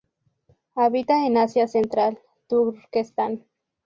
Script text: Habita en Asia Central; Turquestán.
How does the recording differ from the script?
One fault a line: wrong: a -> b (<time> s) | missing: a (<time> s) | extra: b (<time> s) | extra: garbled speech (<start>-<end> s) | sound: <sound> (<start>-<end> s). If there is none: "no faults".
no faults